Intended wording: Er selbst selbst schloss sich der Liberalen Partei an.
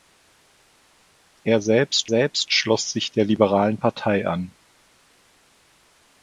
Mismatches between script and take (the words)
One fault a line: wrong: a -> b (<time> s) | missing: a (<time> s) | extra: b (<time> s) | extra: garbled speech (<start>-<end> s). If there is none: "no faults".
no faults